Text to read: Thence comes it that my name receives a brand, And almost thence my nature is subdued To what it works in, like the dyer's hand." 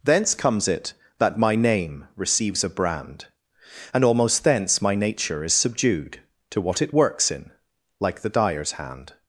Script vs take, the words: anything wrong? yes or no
no